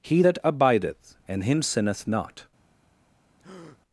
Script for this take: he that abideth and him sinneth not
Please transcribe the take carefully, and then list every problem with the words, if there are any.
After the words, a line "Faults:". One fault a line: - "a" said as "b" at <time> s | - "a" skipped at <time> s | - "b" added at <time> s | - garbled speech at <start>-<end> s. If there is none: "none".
he that abideth and him sinneth not
Faults:
none